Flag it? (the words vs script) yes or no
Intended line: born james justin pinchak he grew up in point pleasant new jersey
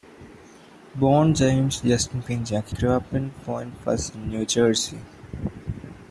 yes